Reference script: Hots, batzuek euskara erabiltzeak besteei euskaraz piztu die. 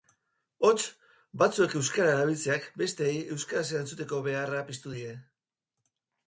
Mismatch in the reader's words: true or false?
true